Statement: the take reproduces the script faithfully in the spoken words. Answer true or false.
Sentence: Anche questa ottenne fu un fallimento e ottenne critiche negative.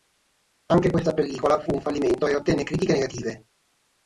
false